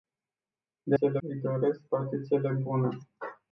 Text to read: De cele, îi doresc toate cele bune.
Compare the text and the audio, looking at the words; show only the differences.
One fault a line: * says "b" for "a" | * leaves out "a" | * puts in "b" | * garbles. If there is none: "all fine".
all fine